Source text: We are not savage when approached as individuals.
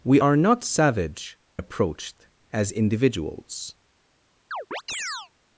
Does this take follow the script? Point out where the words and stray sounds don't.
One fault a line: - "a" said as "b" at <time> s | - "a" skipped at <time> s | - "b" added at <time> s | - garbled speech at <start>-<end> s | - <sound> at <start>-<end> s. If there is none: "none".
- "when" skipped at 1.4 s
- chirp at 4.5-5.3 s